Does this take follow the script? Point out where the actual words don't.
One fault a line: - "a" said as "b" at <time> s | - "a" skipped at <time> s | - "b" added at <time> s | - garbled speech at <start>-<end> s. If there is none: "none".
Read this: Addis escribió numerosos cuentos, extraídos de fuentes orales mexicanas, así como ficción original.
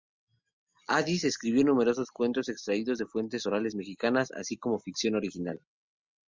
none